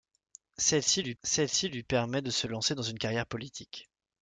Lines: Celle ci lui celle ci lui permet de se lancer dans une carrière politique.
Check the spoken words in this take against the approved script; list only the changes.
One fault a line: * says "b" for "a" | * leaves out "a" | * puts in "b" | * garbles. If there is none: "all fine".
all fine